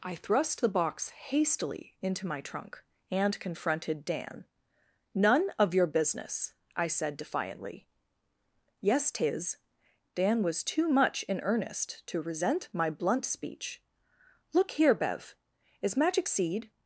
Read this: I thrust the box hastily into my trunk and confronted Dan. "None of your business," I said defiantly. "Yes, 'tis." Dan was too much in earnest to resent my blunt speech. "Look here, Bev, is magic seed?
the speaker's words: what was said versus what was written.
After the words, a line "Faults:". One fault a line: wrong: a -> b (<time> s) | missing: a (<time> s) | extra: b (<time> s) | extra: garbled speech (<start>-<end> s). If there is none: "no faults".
I thrust the box hastily into my trunk and confronted Dan. "None of your business," I said defiantly. "Yes, 'tis." Dan was too much in earnest to resent my blunt speech. "Look here, Bev, is magic seed?
Faults:
no faults